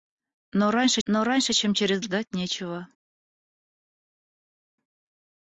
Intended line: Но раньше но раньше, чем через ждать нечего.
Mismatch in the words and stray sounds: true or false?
false